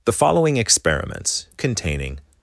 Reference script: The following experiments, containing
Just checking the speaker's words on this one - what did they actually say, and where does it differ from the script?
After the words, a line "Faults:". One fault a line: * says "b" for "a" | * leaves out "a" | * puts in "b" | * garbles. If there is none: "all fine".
The following experiments, containing
Faults:
all fine